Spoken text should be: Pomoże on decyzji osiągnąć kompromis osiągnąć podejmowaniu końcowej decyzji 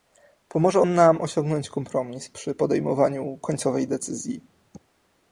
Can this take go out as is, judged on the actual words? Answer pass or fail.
fail